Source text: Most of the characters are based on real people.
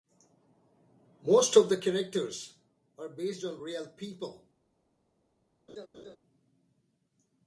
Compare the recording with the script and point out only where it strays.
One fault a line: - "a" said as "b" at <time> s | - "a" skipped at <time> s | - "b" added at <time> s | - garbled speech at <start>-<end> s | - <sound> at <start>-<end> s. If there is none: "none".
- laugh at 5.7-6.2 s